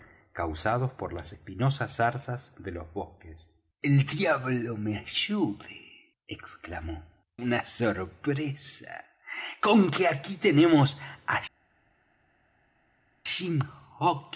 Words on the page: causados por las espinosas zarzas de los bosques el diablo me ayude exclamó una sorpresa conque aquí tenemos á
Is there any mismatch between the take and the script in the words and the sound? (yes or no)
no